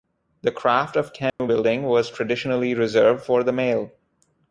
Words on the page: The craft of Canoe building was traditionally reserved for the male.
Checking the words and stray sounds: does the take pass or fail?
fail